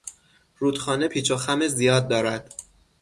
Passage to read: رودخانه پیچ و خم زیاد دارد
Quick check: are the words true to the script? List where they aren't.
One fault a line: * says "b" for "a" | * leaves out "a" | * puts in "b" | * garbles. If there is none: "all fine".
all fine